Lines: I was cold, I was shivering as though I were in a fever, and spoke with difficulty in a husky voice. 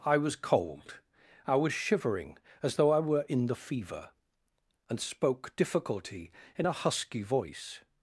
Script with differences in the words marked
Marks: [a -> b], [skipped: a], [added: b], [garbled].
I was cold, I was shivering as though I were in [a -> the] fever, and spoke [skipped: with] difficulty in a husky voice.